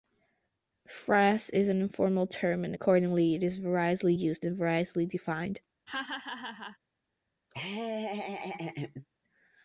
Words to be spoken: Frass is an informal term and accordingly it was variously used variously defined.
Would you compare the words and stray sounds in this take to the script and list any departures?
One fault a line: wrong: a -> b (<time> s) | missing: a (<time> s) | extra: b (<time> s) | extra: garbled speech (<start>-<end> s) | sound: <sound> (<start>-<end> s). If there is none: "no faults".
wrong: was -> is (3.4 s)
extra: and (4.4 s)
sound: laugh (5.9-6.8 s)
sound: laugh (7.5-9.1 s)